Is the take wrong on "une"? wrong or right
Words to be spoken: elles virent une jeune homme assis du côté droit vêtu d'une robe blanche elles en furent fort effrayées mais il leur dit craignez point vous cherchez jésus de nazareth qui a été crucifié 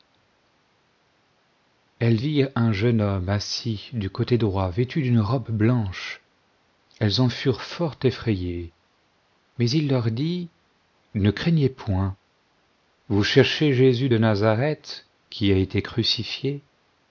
wrong